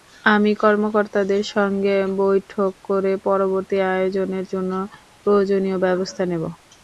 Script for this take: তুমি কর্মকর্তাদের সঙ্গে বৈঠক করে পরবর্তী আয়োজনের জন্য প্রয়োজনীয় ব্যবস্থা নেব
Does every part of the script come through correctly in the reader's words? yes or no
no